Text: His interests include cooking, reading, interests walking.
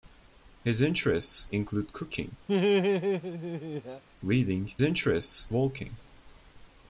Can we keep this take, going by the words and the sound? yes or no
no